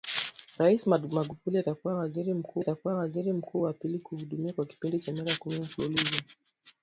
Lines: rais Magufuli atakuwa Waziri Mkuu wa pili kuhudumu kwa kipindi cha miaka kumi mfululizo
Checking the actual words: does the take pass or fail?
fail